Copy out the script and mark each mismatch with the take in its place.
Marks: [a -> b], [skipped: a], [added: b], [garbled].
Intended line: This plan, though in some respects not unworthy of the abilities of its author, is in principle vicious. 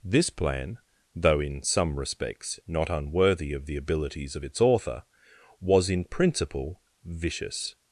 This plan, though in some respects not unworthy of the abilities of its author, [is -> was] in principle vicious.